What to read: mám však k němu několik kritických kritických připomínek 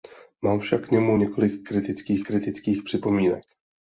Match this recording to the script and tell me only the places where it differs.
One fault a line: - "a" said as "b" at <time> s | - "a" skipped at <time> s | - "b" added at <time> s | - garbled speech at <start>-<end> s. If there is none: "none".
none